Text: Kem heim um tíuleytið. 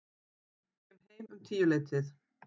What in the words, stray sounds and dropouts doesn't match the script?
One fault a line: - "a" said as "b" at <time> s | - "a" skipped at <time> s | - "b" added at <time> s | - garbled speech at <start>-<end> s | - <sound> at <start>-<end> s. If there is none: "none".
none